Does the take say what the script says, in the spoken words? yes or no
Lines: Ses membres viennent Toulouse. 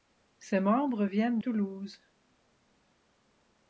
yes